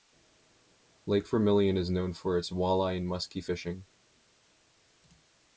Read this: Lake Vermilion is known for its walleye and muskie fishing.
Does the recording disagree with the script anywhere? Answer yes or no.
no